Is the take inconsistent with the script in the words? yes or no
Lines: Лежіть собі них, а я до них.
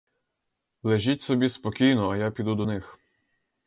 yes